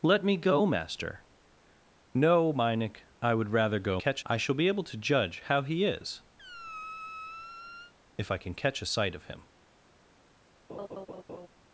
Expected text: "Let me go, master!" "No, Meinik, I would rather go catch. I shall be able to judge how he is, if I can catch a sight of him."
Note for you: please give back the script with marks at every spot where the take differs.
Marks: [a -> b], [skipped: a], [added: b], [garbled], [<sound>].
"Let me go, master!" "No, Meinik, I would rather go catch. I shall be able to judge how he is, [squeak] if I can catch a sight of him." [laugh]